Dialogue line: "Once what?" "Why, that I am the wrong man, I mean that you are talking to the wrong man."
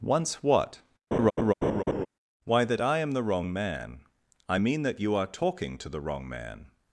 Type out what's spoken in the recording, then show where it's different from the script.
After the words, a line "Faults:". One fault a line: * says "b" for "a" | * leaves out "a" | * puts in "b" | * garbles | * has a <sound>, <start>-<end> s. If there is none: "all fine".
"Once what?" "Why, that I am the wrong man, I mean that you are talking to the wrong man."
Faults:
* has a laugh, 1.1-2.1 s